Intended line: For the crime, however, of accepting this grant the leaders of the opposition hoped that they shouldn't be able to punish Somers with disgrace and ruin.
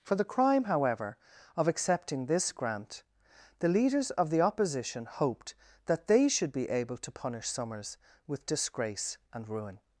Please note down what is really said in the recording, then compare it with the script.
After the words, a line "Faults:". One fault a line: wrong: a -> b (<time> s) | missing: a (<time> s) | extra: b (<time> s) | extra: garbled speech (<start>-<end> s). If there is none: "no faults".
For the crime, however, of accepting this grant the leaders of the opposition hoped that they should be able to punish Somers with disgrace and ruin.
Faults:
wrong: shouldn't -> should (6.3 s)